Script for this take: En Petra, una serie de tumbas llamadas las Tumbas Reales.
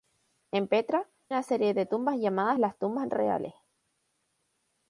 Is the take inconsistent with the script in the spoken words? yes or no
no